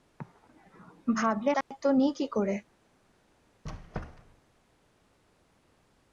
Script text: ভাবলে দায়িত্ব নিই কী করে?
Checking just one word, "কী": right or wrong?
right